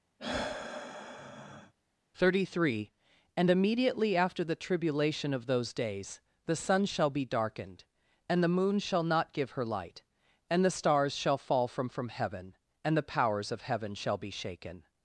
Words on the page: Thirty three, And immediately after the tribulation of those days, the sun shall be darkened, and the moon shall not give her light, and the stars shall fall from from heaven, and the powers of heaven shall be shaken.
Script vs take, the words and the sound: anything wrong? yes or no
yes